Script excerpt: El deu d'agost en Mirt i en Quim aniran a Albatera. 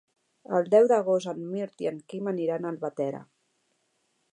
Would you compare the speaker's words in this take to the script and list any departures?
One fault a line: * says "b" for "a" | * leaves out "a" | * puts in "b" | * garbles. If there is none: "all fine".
all fine